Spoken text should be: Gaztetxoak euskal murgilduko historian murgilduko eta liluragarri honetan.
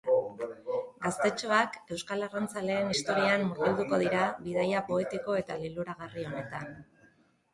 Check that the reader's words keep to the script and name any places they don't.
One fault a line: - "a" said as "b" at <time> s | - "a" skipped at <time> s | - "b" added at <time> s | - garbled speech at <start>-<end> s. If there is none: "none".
- "murgilduko" said as "arrantzaleen" at 2.3 s
- "dira bidaia poetiko" added at 4.0 s